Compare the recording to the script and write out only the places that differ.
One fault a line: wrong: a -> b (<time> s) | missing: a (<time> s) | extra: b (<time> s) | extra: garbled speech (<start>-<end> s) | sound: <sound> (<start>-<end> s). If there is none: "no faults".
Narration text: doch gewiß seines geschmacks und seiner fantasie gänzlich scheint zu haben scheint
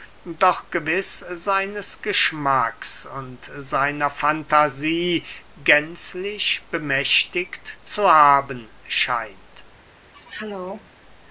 wrong: scheint -> bemächtigt (6.7 s)
sound: throat clearing (10.1-11.0 s)